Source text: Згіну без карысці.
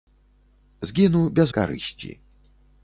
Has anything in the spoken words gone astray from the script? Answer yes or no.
no